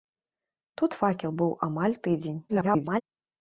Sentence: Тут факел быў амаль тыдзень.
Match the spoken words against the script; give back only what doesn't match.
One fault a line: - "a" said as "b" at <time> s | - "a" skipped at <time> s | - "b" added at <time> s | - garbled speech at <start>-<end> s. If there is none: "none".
- garbled speech at 2.5-3.0 s